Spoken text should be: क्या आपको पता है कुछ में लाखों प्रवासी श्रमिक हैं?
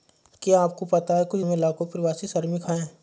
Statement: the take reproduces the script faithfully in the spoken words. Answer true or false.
true